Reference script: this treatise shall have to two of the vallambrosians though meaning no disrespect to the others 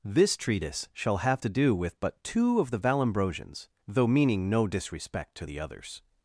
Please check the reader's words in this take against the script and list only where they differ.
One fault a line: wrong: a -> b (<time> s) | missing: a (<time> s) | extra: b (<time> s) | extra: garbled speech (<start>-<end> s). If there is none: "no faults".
extra: do with but (1.5 s)